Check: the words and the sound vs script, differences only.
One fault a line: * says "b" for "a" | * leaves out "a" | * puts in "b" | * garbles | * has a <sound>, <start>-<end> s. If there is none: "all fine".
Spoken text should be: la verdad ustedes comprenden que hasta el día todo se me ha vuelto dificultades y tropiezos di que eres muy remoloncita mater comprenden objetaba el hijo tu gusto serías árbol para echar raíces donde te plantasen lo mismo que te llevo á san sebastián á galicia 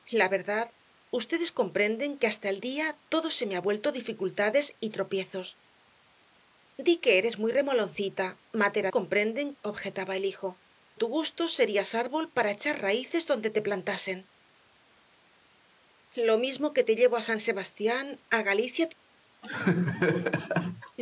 * has a laugh, 19.4-21.0 s